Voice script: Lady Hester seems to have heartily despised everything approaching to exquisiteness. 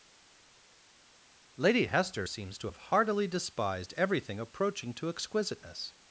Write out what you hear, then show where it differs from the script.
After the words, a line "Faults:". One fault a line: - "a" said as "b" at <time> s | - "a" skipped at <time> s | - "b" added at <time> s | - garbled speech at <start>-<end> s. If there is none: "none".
Lady Hester seems to have heartily despised everything approaching to exquisiteness.
Faults:
none